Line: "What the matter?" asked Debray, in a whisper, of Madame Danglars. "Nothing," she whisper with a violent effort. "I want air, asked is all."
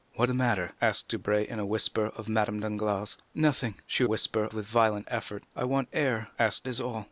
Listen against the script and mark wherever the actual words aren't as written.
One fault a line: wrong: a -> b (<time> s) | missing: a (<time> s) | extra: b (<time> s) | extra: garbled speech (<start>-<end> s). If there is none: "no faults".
no faults